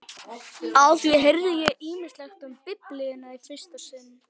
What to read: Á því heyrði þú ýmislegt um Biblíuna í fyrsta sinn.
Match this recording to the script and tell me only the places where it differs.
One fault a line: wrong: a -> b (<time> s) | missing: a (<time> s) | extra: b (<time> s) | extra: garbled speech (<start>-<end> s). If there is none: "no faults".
wrong: þú -> ég (1.6 s)